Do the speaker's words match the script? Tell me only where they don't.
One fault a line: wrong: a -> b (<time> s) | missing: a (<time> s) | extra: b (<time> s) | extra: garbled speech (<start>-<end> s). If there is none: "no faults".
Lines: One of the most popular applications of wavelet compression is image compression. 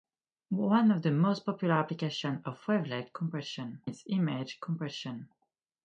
no faults